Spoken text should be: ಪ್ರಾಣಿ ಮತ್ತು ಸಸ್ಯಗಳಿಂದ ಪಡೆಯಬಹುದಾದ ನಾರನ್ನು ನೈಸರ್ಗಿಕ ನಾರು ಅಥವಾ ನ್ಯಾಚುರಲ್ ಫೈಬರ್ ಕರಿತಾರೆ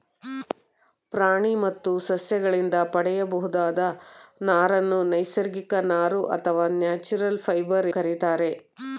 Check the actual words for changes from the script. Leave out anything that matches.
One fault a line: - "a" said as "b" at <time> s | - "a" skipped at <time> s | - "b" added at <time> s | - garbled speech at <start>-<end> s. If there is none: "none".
none